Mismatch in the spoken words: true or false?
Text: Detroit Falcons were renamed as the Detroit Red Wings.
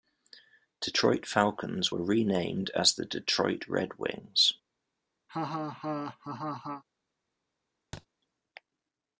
false